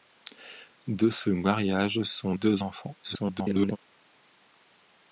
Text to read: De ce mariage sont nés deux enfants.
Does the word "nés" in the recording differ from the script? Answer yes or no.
yes